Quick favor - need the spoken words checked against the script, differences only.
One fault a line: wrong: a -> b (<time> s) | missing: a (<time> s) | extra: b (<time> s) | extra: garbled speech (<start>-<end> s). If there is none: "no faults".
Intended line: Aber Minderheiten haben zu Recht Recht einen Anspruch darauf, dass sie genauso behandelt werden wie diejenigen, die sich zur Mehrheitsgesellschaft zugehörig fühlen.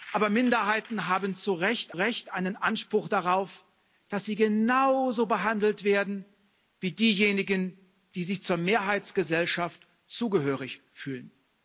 no faults